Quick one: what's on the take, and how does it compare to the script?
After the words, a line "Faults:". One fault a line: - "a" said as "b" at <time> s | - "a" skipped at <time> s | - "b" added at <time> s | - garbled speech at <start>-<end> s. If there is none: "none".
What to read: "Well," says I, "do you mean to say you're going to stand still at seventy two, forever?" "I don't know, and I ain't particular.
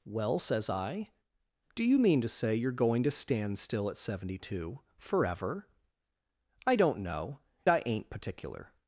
"Well," says I, "do you mean to say you're going to stand still at seventy two, forever?" "I don't know, I ain't particular.
Faults:
- "and" skipped at 7.4 s